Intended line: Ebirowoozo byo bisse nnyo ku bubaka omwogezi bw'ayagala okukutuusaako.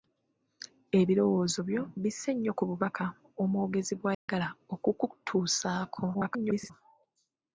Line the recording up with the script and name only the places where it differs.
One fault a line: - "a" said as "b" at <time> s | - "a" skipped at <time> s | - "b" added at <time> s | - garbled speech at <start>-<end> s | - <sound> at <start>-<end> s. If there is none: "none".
- dropout at 4.1-4.3 s
- garbled speech at 6.1-6.7 s